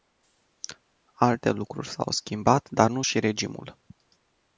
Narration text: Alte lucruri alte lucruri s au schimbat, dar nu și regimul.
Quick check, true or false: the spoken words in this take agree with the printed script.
false